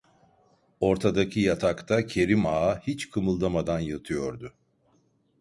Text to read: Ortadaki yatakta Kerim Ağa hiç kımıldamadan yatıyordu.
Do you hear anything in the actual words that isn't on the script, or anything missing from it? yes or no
no